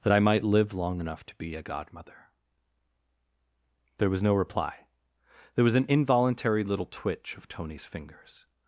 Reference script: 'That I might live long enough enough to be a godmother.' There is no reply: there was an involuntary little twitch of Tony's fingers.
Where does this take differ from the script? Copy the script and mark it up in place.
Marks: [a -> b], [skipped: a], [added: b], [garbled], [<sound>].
'That I might live long enough [skipped: enough] to be a godmother.' There [is -> was] no reply: there was an involuntary little twitch of Tony's fingers.